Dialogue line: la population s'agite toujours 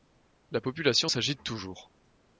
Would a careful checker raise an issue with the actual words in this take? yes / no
no